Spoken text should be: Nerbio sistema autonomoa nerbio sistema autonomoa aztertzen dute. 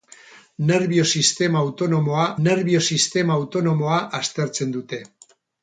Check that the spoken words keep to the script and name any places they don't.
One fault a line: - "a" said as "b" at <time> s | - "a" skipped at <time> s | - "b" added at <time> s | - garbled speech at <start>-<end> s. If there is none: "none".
none